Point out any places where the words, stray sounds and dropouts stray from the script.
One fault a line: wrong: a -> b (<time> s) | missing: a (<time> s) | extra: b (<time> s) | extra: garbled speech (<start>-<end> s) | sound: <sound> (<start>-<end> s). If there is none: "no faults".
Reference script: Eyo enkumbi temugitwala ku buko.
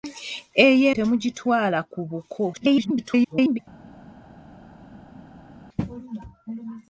missing: enkumbi (0.9 s)
extra: garbled speech (2.5-3.6 s)